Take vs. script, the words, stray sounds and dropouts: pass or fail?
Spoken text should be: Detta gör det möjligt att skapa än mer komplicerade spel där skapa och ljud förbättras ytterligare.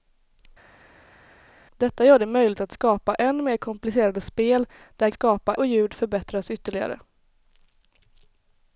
pass